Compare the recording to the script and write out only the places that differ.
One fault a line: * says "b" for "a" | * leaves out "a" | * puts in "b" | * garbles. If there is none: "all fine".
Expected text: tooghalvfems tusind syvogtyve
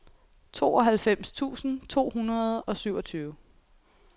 * puts in "to hundrede og"